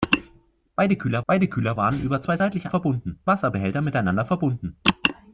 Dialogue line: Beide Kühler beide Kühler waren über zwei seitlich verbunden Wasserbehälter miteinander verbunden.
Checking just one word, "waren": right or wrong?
right